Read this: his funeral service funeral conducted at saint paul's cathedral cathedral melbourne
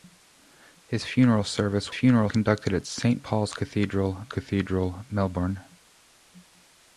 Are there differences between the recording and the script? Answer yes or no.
no